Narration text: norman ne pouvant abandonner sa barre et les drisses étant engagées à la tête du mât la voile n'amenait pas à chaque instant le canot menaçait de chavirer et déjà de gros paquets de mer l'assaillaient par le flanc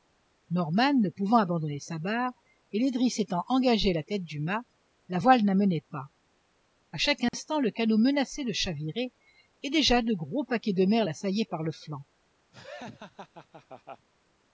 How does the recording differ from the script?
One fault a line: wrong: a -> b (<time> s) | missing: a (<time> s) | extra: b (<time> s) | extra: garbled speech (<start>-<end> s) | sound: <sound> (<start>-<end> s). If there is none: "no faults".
sound: dropout (7.3-7.3 s)
sound: laugh (12.5-14.1 s)